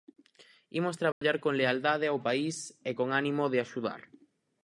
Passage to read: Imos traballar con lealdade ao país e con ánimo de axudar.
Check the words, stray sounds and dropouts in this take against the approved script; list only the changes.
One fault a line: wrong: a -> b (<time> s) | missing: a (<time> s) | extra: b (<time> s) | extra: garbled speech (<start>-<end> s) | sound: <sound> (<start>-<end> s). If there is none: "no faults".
sound: dropout (1.1-1.2 s)